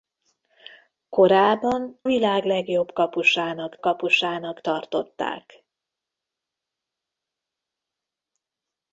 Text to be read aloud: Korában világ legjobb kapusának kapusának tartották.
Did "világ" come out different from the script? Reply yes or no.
no